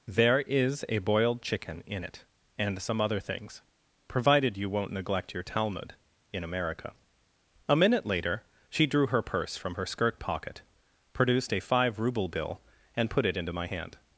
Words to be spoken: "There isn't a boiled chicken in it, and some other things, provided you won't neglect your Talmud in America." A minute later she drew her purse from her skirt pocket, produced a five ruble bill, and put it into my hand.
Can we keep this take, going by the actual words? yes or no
no